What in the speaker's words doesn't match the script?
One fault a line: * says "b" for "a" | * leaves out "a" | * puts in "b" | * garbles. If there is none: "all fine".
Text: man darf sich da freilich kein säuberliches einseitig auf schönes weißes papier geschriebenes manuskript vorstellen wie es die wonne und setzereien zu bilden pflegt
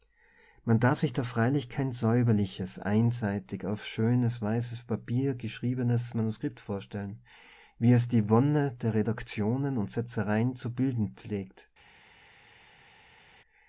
* puts in "der redaktionen"